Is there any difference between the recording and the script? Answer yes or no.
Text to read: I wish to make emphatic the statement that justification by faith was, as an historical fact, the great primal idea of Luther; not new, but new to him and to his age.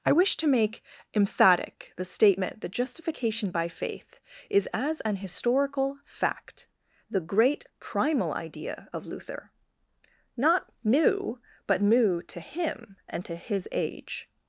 yes